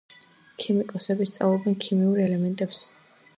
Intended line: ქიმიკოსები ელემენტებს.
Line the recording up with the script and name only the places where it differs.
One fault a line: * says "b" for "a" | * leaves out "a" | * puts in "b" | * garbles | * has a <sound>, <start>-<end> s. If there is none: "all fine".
* puts in "სწავლობენ ქიმიურ"